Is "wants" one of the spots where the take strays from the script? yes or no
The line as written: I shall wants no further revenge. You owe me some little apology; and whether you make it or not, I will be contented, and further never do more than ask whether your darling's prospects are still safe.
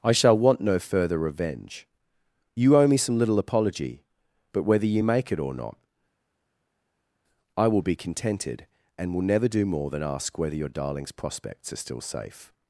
yes